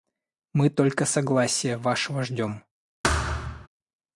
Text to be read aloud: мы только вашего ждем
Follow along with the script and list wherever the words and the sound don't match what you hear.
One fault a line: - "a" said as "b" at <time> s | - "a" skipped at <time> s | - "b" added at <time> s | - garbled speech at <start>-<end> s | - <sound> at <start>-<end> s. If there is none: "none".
- "согласия" added at 1.1 s
- thud at 3.0-3.7 s